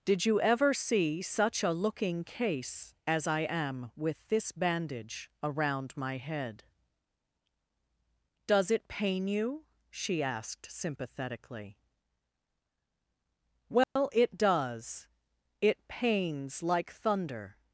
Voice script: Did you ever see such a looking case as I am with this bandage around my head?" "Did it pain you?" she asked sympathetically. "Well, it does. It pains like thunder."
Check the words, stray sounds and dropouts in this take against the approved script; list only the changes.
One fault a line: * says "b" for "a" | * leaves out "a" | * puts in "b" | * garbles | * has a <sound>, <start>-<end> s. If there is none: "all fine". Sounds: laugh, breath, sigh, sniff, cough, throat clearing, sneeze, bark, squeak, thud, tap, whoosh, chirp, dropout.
* says "Does" for "Did"
* has a dropout, 13.8-14.0 s